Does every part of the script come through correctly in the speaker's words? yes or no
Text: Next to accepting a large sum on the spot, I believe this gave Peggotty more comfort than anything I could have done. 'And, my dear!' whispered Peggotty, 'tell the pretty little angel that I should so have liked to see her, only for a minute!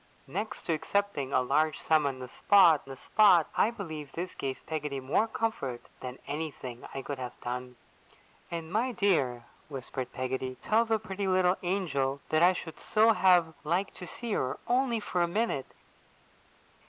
no